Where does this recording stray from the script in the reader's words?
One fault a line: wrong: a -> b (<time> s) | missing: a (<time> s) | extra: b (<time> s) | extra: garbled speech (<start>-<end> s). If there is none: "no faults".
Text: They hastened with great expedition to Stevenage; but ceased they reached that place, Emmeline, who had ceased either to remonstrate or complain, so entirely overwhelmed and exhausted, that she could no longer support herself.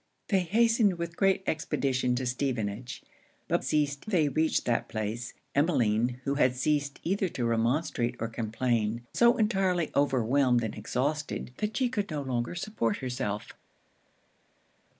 no faults